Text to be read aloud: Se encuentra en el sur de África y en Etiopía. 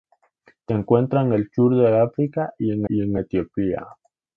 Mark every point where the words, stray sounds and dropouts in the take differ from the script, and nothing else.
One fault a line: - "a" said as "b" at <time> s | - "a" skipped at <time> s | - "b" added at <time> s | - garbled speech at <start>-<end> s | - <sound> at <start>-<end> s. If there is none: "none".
- "y en" added at 2.9 s